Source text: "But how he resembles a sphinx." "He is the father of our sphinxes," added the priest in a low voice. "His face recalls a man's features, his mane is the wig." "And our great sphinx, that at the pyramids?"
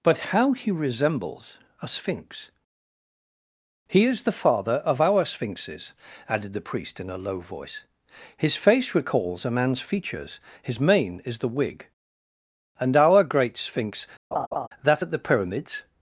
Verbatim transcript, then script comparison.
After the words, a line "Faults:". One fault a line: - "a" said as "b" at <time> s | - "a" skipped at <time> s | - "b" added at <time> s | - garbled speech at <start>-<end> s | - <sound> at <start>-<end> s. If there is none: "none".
"But how he resembles a sphinx." "He is the father of our sphinxes," added the priest in a low voice. "His face recalls a man's features, his mane is the wig." "And our great sphinx, that at the pyramids?"
Faults:
- laugh at 14.3-14.7 s